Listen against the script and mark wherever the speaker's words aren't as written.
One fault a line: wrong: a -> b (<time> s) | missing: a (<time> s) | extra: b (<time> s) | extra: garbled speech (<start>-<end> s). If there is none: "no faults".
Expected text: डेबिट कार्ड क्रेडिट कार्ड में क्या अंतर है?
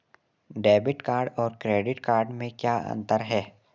extra: और (1.4 s)